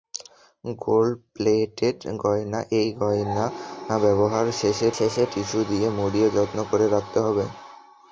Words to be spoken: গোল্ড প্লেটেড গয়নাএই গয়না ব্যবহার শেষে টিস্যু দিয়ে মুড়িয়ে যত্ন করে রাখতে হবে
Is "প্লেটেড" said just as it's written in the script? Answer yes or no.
yes